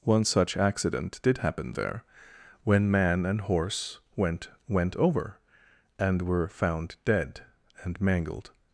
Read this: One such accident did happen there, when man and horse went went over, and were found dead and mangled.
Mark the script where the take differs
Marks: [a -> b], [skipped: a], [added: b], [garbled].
One such accident did happen there, when man and horse went went over, and were found dead and mangled.